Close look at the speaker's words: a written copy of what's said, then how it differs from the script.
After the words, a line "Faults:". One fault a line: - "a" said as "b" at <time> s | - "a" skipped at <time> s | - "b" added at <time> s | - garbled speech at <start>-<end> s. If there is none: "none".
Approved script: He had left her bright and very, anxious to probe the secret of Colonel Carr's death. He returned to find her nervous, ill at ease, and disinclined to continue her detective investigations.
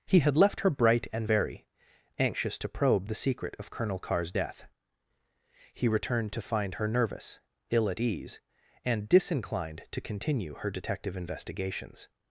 He had left her bright and very, anxious to probe the secret of Colonel Carr's death. He returned to find her nervous, ill at ease, and disinclined to continue her detective investigations.
Faults:
none